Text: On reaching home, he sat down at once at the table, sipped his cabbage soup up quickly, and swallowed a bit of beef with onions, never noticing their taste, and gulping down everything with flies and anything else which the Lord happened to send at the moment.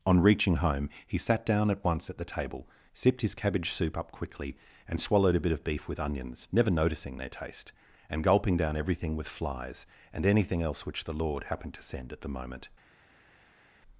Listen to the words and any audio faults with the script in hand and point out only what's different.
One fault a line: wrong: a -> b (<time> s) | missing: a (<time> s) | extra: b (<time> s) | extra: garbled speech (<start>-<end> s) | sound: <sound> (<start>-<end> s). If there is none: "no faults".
no faults